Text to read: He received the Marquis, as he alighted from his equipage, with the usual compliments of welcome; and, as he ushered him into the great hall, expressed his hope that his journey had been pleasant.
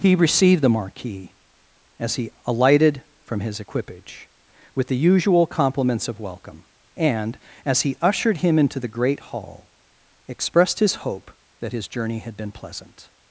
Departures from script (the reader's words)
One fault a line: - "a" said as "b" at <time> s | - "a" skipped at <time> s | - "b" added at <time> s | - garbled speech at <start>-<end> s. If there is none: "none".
none